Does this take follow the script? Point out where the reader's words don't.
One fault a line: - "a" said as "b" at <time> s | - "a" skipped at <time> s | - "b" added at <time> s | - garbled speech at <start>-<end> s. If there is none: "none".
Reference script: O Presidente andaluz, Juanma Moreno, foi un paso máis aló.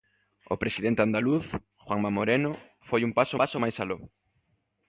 - "paso" added at 3.4 s